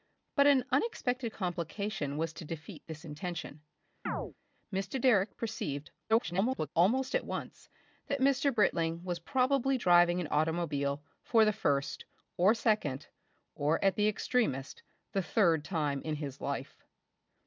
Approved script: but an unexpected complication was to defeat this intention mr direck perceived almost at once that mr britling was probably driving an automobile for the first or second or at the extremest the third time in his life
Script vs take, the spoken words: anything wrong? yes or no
yes